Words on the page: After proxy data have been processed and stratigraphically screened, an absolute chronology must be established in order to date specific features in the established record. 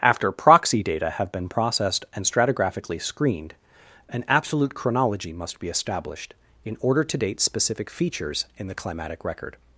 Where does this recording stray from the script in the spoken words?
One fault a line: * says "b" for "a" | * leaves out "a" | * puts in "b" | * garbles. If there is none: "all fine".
* says "climatic" for "established"